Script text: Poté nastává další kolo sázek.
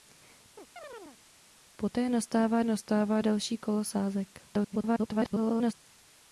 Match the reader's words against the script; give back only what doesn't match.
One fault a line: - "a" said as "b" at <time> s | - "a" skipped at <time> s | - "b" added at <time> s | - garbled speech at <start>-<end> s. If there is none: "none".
- "nastává" added at 2.6 s
- garbled speech at 4.5-5.7 s